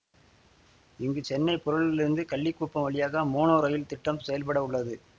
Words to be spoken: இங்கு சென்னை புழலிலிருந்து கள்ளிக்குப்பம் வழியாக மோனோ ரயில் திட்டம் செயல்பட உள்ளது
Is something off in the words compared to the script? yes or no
no